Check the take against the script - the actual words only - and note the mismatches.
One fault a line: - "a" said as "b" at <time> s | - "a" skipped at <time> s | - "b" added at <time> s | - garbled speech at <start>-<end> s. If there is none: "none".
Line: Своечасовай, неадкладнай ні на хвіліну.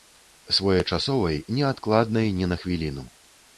none